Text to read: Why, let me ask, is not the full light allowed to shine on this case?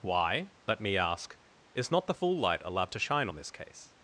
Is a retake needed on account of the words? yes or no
no